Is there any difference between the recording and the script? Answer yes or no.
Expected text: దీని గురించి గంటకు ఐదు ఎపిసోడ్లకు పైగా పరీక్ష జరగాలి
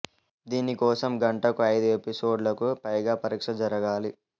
yes